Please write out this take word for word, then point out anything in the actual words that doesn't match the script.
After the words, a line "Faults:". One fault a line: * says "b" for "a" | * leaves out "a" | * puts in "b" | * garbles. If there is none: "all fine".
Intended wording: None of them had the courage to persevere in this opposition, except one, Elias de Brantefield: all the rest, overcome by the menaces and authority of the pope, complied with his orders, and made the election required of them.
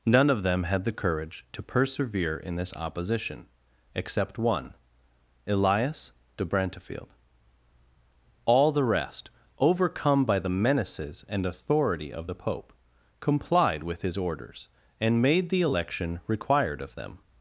None of them had the courage to persevere in this opposition, except one, Elias de Brantefield: all the rest, overcome by the menaces and authority of the pope, complied with his orders, and made the election required of them.
Faults:
all fine